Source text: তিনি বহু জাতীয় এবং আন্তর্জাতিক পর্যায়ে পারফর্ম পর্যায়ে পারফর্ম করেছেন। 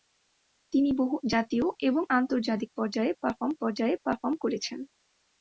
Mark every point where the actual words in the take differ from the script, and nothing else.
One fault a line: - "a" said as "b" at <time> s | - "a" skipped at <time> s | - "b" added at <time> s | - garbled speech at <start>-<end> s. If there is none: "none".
none